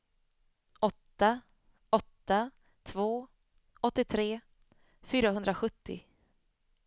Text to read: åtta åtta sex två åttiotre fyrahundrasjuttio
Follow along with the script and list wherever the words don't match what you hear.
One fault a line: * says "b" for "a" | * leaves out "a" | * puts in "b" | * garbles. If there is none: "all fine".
* leaves out "sex"